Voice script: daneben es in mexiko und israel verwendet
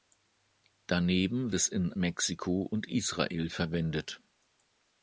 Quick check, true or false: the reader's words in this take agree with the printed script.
true